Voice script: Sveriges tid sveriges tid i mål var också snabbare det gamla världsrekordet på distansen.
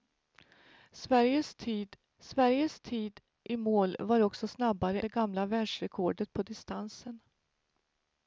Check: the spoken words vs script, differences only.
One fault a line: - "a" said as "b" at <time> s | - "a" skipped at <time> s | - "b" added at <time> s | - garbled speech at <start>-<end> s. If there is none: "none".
none